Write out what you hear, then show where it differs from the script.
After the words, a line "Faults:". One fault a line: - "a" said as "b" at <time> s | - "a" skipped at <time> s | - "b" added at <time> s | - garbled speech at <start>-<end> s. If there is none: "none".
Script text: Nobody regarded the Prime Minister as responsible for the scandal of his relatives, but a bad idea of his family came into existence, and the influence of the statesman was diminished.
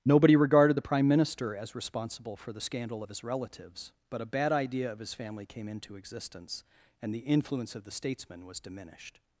Nobody regarded the Prime Minister as responsible for the scandal of his relatives, but a bad idea of his family came into existence, and the influence of the statesman was diminished.
Faults:
none